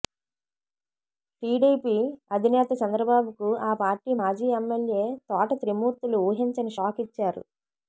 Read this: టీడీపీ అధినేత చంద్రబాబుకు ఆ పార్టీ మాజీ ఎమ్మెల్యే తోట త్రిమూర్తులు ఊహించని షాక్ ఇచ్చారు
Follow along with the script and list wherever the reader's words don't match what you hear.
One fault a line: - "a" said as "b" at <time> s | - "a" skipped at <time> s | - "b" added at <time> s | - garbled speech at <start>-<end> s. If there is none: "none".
none